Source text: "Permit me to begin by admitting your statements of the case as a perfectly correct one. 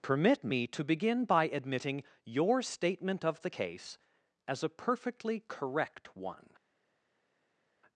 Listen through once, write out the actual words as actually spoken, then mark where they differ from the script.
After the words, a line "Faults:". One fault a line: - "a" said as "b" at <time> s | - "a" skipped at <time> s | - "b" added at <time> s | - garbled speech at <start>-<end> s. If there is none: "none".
"Permit me to begin by admitting your statement of the case as a perfectly correct one.
Faults:
- "statements" said as "statement" at 2.6 s